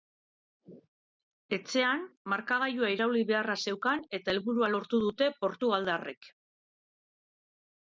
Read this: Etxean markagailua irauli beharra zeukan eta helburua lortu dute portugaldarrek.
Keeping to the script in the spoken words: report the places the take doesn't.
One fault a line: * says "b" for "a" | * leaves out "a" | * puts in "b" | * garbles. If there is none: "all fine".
all fine